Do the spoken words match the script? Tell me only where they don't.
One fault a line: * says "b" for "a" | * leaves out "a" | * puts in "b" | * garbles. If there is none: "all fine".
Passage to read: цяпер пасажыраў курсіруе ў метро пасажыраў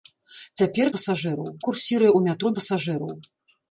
all fine